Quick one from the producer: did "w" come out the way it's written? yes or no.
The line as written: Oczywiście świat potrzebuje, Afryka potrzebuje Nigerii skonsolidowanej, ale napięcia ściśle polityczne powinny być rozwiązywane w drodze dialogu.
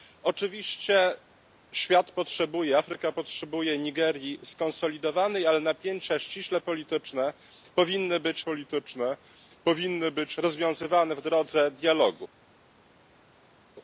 yes